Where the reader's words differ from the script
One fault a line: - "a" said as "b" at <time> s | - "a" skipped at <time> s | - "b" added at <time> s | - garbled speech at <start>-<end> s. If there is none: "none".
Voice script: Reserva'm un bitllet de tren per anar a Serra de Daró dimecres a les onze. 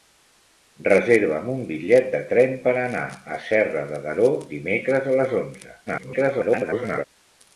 - garbled speech at 5.9-7.0 s